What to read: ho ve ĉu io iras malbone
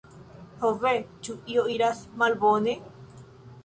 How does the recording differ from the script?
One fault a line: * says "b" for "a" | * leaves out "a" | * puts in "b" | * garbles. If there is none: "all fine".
all fine